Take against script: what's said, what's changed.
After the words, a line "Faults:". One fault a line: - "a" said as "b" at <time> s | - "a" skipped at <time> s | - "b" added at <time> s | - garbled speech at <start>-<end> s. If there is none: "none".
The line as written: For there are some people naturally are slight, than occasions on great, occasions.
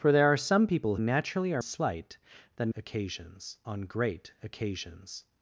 For there are some people naturally are slight, than occasions on great, occasions.
Faults:
none